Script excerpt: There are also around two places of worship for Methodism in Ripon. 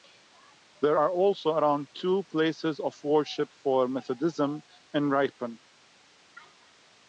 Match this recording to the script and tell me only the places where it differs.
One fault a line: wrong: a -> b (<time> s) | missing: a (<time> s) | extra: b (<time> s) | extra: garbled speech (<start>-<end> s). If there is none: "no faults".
no faults